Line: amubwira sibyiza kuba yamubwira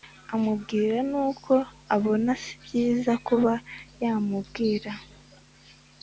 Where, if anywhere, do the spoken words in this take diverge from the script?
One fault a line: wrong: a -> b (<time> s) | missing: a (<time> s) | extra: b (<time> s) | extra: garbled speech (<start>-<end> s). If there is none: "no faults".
extra: nuko abona (1.1 s)